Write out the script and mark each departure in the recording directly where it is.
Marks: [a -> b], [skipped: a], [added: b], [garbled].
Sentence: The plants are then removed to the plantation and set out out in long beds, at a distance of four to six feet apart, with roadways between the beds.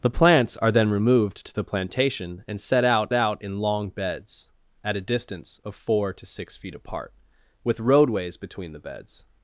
The plants are then removed to the plantation and set out out in long beds, at a distance of four to six feet apart, with roadways between the beds.